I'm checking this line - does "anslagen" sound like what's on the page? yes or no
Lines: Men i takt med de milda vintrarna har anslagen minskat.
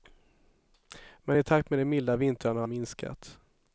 no